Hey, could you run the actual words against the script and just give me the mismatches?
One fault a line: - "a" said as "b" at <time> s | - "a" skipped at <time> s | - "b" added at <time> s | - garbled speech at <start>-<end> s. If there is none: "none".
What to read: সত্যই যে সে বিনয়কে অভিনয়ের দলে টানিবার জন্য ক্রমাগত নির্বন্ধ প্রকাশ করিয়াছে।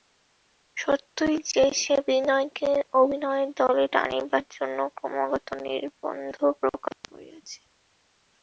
none